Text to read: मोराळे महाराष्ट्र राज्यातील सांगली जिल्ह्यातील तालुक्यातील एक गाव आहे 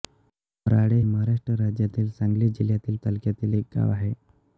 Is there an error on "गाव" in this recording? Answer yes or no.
no